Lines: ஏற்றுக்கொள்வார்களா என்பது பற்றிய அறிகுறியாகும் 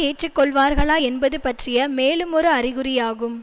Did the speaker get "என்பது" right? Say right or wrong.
right